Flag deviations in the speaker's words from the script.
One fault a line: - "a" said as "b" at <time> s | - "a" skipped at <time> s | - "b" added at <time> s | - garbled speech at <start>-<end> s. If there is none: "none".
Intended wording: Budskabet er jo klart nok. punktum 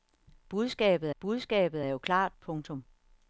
- "budskabet" added at 1.2 s
- "nok" skipped at 2.4 s